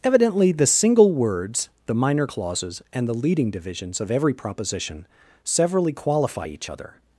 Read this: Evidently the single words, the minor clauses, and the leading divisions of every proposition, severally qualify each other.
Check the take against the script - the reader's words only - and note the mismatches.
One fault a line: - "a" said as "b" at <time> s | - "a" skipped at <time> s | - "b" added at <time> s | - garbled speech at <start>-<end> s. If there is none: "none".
none